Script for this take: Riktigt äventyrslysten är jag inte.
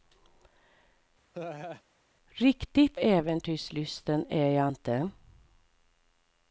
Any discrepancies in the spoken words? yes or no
no